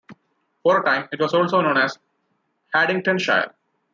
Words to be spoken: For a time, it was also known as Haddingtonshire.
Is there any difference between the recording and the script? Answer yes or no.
no